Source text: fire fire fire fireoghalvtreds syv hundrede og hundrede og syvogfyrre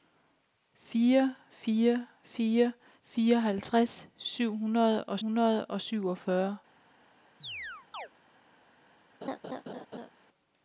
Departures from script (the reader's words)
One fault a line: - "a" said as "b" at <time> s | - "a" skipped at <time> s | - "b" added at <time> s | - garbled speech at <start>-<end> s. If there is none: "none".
none